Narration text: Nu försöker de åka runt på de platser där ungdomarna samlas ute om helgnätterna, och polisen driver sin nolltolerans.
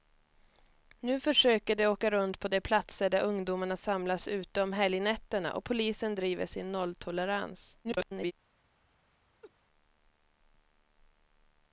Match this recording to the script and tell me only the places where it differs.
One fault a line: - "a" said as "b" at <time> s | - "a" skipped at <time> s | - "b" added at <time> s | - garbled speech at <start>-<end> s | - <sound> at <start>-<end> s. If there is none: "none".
- garbled speech at 7.8-8.3 s
- laugh at 9.4-9.5 s